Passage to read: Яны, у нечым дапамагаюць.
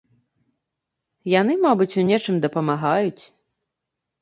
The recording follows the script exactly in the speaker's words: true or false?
false